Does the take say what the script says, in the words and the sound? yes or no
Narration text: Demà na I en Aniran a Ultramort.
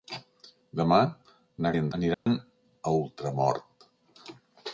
no